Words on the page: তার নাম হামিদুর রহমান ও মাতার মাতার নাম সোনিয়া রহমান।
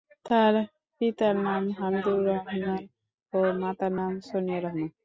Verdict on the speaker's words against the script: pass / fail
fail